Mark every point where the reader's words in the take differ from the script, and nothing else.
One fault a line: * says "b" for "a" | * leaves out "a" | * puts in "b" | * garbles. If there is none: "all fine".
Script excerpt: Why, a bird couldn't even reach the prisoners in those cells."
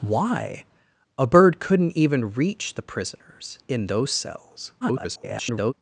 * garbles